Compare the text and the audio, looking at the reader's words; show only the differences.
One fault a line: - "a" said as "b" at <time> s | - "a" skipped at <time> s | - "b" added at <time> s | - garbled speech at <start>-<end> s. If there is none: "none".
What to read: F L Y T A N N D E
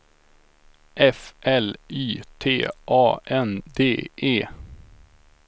- "N" skipped at 3.6 s